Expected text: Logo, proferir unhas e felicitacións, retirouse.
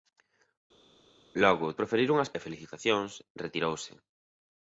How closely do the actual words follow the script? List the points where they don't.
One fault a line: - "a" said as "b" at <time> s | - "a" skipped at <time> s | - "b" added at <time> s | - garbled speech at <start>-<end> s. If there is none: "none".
none